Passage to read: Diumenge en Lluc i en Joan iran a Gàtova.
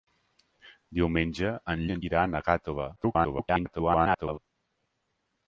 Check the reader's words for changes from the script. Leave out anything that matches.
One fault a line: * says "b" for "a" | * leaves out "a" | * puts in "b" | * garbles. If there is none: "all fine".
* leaves out "Lluc"
* leaves out "Joan"
* garbles